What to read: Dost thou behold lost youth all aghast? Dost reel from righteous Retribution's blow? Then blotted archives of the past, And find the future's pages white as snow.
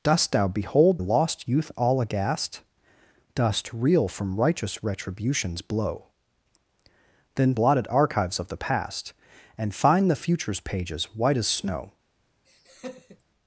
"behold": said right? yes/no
yes